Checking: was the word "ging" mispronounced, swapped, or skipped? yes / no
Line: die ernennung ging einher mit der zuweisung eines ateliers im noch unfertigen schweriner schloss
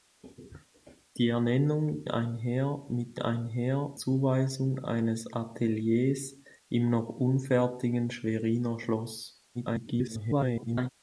yes